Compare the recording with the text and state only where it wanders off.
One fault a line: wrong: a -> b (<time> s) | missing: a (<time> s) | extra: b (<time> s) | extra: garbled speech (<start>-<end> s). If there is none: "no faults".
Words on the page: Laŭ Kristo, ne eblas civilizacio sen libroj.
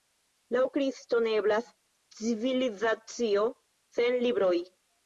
no faults